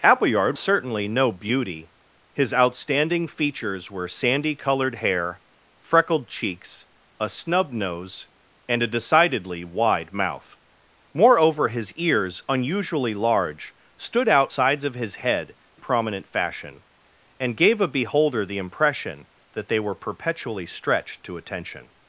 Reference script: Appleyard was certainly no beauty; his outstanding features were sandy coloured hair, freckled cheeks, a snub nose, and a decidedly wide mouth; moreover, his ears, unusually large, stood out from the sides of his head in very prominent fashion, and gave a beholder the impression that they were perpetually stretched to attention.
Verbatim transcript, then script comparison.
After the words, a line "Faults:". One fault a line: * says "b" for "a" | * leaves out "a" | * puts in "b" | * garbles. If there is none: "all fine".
Appleyard certainly no beauty; his outstanding features were sandy coloured hair, freckled cheeks, a snub nose, and a decidedly wide mouth; moreover, his ears, unusually large, stood out sides of his head prominent fashion, and gave a beholder the impression that they were perpetually stretched to attention.
Faults:
* leaves out "was"
* leaves out "from the"
* leaves out "in very"